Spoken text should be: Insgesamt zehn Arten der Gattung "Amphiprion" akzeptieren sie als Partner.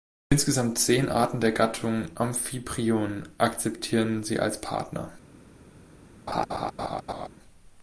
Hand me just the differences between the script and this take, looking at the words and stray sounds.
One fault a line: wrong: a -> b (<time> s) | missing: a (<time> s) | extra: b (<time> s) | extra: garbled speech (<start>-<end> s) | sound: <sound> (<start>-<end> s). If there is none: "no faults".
sound: laugh (6.3-7.3 s)